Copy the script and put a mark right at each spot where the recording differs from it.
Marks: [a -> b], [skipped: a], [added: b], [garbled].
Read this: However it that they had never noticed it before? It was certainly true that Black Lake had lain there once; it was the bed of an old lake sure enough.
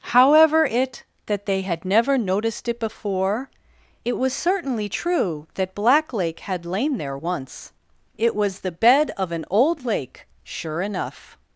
However it that they had never noticed it before? It was certainly true that Black Lake had lain there once; it was the bed of an old lake sure enough.